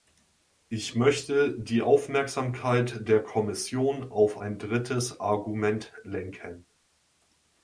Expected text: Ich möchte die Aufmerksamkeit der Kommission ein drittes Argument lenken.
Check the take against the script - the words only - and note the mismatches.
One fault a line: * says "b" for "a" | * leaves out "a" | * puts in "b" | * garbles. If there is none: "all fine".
* puts in "auf"